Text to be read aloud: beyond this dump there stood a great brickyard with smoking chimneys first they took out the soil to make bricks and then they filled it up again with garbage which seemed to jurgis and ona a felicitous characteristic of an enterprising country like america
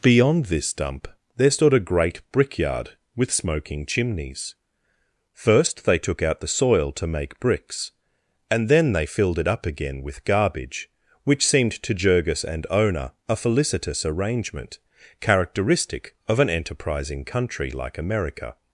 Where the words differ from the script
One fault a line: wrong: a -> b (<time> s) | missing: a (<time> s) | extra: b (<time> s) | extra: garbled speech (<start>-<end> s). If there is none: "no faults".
extra: arrangement (14.1 s)